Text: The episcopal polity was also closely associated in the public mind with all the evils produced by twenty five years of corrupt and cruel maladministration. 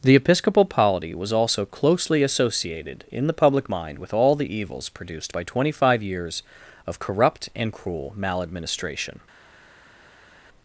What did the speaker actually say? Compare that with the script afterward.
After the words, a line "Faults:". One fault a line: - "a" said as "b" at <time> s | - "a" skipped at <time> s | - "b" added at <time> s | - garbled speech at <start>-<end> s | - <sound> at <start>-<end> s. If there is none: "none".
The episcopal polity was also closely associated in the public mind with all the evils produced by twenty five years of corrupt and cruel maladministration.
Faults:
none